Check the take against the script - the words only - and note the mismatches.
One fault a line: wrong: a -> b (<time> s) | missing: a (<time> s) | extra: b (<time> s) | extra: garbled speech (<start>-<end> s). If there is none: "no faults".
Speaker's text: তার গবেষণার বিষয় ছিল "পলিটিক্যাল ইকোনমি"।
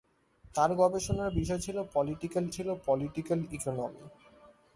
extra: ছিল পলিটিক্যাল (2.5 s)